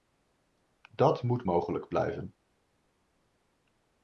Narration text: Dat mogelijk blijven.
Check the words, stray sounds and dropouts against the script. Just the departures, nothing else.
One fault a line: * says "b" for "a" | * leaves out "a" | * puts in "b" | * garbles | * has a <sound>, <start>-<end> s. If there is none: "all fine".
* puts in "moet"